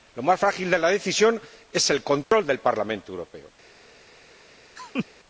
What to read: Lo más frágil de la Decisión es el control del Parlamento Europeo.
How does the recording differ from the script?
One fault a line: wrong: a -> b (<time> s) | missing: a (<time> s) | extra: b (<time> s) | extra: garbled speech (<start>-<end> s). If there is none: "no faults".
no faults